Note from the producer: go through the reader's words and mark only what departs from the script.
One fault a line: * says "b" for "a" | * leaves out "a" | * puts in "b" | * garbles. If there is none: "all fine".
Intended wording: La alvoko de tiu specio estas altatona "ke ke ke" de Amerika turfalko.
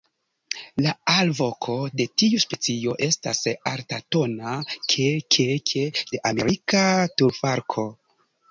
all fine